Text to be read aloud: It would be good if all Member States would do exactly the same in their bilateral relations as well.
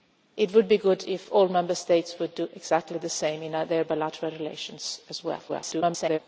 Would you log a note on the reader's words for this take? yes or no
yes